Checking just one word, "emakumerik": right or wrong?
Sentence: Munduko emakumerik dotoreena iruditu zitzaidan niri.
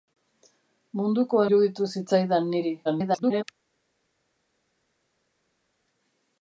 wrong